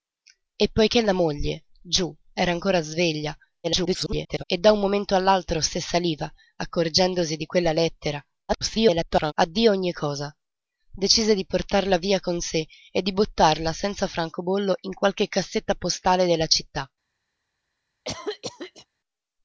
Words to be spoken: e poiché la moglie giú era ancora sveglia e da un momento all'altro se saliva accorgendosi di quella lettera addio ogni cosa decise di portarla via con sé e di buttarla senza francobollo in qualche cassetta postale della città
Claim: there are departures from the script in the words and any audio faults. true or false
true